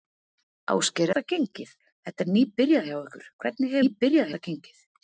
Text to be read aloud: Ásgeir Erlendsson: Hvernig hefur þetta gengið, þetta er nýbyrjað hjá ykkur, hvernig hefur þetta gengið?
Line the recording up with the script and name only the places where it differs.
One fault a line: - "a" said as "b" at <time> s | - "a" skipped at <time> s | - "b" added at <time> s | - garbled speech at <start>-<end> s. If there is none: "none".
- "Erlendsson Hvernig hefur" skipped at 1.1 s
- "hefur" said as "nýbyrjað" at 3.8 s